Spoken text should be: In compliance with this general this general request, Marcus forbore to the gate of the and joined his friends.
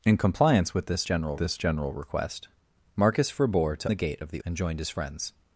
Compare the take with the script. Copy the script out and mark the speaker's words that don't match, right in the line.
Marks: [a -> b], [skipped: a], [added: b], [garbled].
In compliance with this general this general request, Marcus forbore to the gate of the and joined his friends.